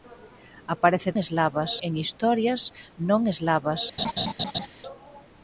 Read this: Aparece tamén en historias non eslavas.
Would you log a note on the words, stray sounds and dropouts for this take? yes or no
yes